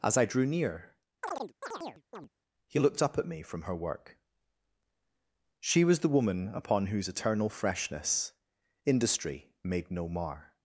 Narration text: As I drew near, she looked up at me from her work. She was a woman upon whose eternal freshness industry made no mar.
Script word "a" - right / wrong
wrong